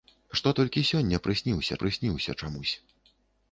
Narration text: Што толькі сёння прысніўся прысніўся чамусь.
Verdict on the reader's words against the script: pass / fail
pass